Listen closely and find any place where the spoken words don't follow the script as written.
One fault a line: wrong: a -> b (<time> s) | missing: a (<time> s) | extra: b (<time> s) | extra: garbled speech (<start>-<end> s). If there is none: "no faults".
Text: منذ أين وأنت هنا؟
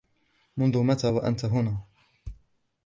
wrong: أين -> متى (0.8 s)